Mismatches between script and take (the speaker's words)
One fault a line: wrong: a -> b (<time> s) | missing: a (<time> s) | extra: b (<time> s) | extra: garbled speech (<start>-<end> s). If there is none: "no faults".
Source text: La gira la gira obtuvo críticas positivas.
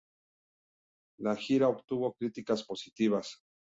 missing: la gira (1.7 s)